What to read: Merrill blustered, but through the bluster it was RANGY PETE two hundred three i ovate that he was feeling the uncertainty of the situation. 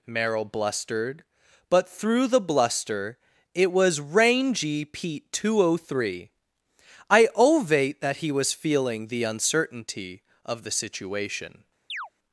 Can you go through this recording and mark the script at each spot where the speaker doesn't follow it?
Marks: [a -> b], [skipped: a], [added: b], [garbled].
Merrill blustered, but through the bluster it was RANGY PETE two hundred three i ovate that he was feeling the uncertainty of the situation.